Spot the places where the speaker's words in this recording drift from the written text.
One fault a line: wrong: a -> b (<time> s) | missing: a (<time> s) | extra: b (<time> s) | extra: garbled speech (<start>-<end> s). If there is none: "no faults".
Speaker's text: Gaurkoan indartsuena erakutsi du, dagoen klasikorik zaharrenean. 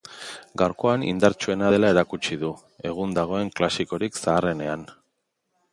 extra: dela (1.7 s)
extra: egun (2.9 s)